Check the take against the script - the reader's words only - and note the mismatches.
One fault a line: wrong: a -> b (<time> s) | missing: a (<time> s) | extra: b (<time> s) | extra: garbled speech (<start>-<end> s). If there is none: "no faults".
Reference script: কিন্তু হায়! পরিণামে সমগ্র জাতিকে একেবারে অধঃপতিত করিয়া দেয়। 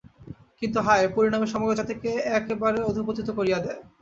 no faults